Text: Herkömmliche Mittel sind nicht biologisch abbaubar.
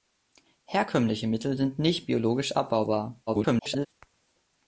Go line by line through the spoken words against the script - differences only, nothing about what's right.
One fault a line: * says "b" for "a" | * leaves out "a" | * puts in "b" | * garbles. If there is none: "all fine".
* garbles